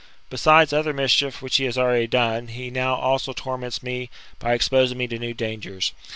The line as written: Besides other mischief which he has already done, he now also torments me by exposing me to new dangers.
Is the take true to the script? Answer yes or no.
yes